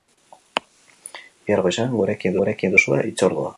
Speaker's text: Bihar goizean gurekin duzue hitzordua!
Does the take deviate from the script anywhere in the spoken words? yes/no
yes